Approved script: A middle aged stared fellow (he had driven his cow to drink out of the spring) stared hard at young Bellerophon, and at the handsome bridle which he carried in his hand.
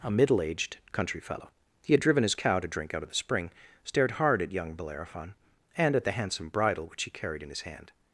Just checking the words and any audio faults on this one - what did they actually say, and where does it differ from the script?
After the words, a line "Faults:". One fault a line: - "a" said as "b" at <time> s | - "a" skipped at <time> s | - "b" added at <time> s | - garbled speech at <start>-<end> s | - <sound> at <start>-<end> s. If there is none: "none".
A middle aged country fellow (he had driven his cow to drink out of the spring) stared hard at young Bellerophon, and at the handsome bridle which he carried in his hand.
Faults:
- "stared" said as "country" at 0.9 s